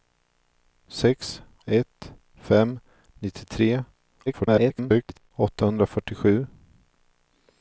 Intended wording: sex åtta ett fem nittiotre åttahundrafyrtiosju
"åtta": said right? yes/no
no